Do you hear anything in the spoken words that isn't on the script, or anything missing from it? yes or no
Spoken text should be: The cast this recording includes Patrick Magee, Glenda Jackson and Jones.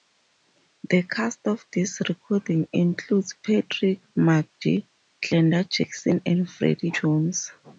yes